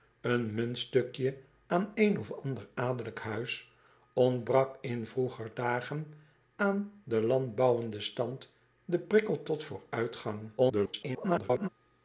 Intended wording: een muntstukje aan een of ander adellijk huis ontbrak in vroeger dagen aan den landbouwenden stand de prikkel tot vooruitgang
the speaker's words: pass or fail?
fail